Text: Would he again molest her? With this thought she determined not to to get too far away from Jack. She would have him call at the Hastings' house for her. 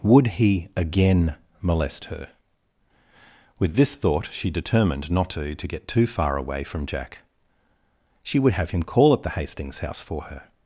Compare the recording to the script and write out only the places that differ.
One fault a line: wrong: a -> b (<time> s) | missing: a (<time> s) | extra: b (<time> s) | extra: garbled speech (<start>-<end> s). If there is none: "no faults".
no faults